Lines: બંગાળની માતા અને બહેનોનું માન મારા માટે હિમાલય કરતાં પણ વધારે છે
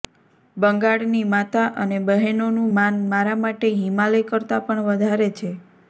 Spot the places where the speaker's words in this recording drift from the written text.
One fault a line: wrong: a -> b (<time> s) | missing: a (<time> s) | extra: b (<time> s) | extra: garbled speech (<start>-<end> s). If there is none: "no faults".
no faults